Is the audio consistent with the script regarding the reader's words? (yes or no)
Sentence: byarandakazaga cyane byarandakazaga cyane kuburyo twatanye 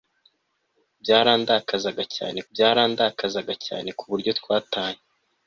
yes